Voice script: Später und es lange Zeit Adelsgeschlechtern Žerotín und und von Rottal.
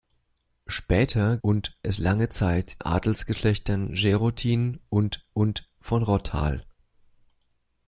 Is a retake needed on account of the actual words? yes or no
no